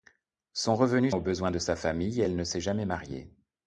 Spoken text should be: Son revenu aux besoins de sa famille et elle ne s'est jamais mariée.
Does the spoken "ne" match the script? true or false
true